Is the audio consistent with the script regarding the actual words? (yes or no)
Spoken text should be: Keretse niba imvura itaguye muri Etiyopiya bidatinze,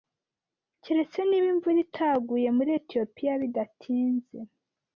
yes